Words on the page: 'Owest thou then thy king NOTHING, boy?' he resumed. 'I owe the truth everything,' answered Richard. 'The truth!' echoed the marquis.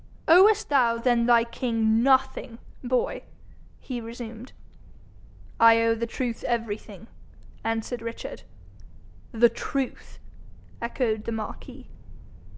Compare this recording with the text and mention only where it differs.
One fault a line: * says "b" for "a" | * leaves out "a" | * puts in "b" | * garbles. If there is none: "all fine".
all fine